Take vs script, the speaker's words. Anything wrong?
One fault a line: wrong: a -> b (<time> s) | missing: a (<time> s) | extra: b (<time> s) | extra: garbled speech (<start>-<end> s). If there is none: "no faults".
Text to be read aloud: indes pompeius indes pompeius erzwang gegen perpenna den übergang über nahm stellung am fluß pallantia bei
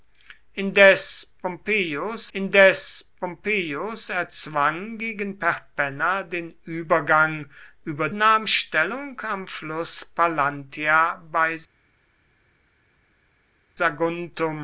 no faults